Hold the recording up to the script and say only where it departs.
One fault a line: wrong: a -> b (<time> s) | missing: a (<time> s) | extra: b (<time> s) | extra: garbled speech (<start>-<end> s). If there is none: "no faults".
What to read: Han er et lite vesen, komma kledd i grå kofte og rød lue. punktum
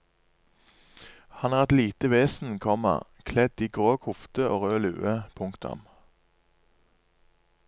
no faults